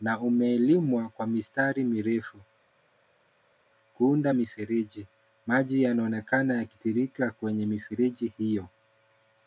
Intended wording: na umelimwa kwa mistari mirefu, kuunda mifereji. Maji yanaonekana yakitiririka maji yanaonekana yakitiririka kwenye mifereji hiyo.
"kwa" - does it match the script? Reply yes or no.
yes